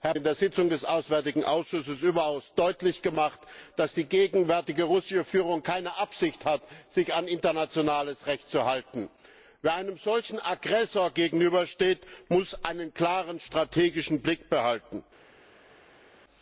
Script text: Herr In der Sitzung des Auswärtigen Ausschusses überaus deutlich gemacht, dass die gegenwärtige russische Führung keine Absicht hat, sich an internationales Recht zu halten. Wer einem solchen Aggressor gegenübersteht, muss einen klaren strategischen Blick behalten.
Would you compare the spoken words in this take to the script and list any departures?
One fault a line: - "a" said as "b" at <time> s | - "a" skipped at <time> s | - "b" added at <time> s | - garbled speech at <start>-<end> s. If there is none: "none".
none